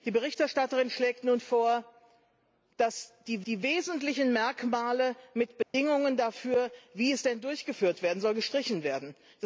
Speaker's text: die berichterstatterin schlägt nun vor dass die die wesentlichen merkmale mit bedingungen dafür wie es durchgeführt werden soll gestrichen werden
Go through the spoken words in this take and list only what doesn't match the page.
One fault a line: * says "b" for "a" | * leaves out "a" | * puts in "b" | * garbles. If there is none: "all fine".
all fine